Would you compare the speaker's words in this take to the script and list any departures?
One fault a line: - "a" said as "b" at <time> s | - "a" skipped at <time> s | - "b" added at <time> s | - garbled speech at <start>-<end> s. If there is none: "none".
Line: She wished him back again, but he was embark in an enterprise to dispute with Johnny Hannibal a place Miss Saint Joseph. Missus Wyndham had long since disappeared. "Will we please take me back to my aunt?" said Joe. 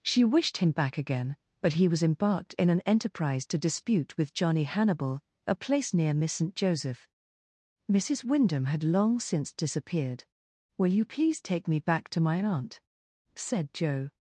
- "embark" said as "embarked" at 2.0 s
- "near" added at 5.9 s
- "we" said as "you" at 10.9 s